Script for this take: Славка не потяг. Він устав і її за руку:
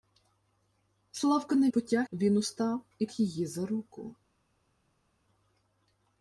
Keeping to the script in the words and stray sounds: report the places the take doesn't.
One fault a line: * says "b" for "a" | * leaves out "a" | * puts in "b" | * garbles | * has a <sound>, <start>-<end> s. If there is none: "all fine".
all fine